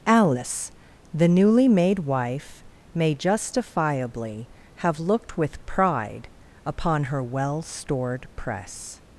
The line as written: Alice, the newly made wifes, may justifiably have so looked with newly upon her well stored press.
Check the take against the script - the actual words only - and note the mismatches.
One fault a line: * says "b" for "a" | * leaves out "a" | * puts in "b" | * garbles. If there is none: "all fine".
* says "wife" for "wifes"
* leaves out "so"
* says "pride" for "newly"